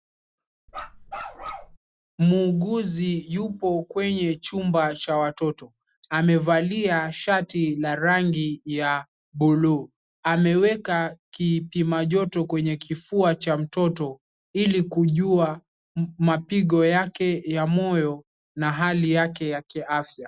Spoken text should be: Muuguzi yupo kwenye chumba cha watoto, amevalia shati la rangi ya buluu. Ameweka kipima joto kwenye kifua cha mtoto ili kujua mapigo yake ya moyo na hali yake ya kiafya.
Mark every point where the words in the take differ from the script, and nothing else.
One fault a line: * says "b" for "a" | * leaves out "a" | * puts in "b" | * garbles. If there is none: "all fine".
all fine